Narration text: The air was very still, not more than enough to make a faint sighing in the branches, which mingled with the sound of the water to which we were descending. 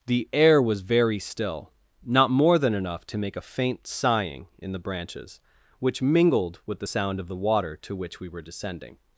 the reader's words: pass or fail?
pass